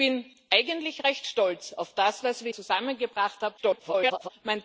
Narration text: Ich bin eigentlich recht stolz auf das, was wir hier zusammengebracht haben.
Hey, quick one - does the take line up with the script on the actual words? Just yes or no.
no